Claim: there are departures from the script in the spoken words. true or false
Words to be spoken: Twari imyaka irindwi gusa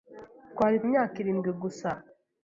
false